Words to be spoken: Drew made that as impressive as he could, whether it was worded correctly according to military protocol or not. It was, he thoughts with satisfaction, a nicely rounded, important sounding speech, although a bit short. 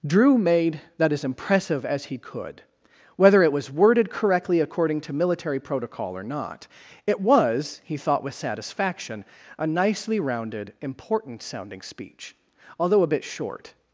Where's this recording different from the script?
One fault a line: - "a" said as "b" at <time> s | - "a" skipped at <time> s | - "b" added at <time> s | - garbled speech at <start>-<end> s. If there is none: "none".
- "thoughts" said as "thought" at 8.0 s